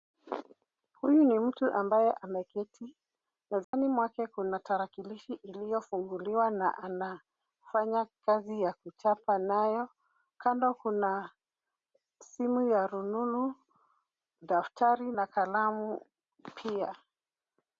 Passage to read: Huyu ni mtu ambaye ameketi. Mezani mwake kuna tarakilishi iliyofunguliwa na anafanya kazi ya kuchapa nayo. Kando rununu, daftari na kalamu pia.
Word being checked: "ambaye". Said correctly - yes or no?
yes